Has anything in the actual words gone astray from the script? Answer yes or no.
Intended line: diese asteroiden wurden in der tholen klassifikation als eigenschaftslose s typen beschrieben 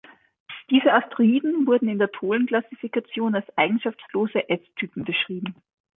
no